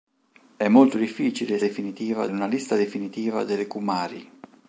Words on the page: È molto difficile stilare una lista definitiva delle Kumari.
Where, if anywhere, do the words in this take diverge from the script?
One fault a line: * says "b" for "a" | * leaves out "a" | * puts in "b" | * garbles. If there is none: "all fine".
* says "definitiva" for "stilare"